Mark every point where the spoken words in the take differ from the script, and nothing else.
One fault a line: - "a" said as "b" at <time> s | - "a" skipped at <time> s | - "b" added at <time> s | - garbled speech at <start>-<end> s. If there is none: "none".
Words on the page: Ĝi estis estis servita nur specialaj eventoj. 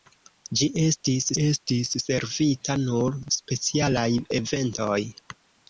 none